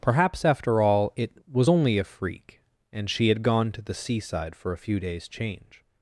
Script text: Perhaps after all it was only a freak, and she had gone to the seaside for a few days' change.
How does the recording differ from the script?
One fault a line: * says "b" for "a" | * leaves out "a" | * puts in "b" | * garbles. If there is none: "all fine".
all fine